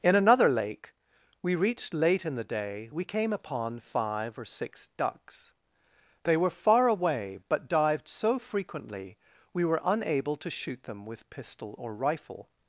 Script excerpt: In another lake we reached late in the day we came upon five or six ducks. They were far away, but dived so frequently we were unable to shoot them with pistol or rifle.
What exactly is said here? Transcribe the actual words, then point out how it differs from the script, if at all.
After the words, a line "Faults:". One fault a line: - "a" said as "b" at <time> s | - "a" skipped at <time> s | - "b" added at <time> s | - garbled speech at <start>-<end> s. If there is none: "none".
In another lake we reached late in the day we came upon five or six ducks. They were far away, but dived so frequently we were unable to shoot them with pistol or rifle.
Faults:
none